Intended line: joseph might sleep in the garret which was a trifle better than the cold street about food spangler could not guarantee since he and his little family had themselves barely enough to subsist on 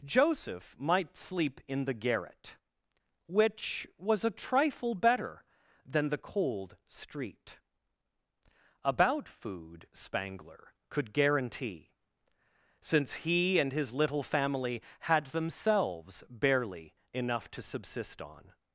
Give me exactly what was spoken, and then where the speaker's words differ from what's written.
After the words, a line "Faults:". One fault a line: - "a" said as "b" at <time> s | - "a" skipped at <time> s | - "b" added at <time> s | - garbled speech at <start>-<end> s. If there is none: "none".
joseph might sleep in the garret which was a trifle better than the cold street about food spangler could guarantee since he and his little family had themselves barely enough to subsist on
Faults:
- "not" skipped at 11.1 s